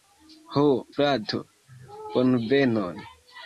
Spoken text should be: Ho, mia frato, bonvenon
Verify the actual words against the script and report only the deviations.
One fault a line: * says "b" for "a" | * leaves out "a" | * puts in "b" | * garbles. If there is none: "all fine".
* leaves out "mia"